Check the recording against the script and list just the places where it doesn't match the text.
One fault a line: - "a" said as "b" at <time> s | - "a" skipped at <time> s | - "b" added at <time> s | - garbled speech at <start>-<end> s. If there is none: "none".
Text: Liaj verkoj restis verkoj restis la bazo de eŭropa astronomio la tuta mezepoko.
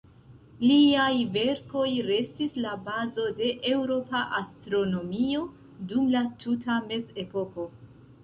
- "verkoj restis" skipped at 2.5 s
- "dum" added at 5.9 s